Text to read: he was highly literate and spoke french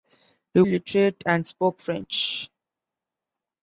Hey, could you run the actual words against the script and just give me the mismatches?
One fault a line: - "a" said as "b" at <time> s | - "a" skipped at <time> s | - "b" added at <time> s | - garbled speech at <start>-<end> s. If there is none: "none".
- "was highly" skipped at 0.6 s